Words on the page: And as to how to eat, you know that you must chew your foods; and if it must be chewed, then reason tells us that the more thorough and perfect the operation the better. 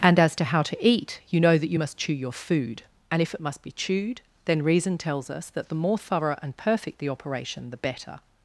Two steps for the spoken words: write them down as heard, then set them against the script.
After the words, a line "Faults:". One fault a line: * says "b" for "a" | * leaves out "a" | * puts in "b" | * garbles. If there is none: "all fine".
And as to how to eat, you know that you must chew your food; and if it must be chewed, then reason tells us that the more thorough and perfect the operation the better.
Faults:
* says "food" for "foods"